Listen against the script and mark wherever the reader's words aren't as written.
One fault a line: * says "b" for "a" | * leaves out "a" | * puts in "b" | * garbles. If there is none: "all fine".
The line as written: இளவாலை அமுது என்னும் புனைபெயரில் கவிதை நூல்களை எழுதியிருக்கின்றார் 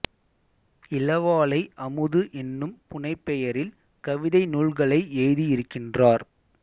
all fine